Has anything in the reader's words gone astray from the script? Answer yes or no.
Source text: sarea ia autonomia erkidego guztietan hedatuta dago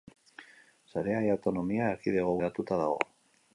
yes